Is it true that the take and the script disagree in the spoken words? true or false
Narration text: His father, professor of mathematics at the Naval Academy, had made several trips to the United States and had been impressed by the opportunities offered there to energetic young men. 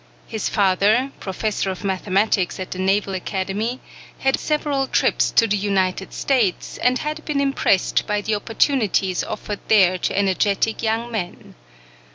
true